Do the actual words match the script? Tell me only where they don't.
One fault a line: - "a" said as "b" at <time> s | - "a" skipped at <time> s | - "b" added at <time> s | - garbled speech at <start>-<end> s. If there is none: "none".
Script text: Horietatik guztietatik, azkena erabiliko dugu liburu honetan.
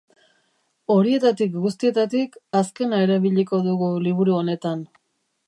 none